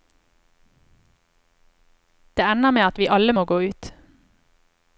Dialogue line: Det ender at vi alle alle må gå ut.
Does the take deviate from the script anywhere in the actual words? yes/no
yes